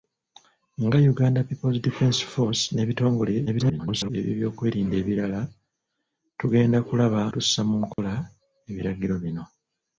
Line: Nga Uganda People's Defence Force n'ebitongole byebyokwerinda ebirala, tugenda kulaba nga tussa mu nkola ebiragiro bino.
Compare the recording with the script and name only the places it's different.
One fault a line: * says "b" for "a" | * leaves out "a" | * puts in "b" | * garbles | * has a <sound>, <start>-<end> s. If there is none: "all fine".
* garbles
* leaves out "nga"
* has a dropout, 7.9-8.0 s